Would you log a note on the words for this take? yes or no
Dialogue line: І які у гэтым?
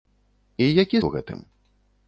no